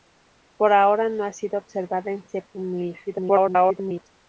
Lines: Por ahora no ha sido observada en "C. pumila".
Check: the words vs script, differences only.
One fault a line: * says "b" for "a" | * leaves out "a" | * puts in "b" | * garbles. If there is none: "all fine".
* garbles